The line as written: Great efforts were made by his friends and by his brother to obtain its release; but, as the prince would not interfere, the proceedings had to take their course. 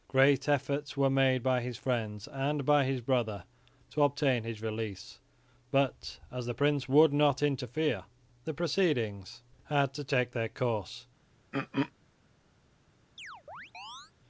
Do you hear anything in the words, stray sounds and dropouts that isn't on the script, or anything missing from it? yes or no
yes